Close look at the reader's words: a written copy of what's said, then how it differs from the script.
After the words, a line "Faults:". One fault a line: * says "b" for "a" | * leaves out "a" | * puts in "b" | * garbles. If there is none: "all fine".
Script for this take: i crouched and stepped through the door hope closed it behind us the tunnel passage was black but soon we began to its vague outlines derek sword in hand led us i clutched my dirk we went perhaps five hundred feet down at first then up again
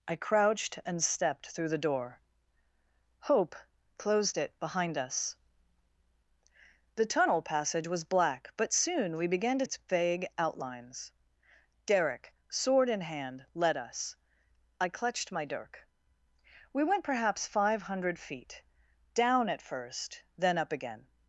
i crouched and stepped through the door hope closed it behind us the tunnel passage was black but soon we began to its vague outlines derek sword in hand led us i clutched my dirk we went perhaps five hundred feet down at first then up again
Faults:
all fine